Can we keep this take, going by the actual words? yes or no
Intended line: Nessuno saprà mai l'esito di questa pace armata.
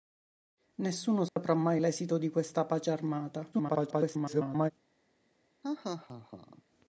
no